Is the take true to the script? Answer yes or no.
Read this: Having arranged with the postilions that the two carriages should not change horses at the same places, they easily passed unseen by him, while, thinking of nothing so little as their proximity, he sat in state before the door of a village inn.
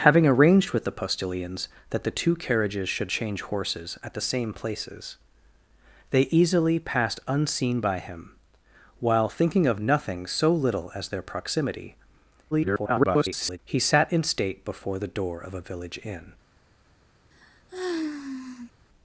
no